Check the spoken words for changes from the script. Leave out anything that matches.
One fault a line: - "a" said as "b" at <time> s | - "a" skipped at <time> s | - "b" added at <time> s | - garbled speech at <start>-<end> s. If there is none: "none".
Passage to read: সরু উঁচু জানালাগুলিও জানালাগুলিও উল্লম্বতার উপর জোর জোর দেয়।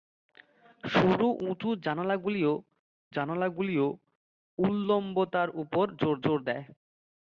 none